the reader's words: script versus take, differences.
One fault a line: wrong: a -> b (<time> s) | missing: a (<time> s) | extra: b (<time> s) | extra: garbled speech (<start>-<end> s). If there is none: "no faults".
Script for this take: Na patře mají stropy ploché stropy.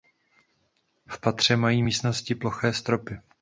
wrong: Na -> V (1.1 s)
wrong: stropy -> místnosti (1.8 s)